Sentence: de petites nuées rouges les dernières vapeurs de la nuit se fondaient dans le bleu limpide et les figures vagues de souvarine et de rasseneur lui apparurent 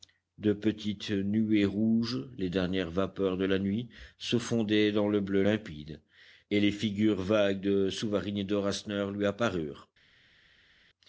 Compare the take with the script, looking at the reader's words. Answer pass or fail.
pass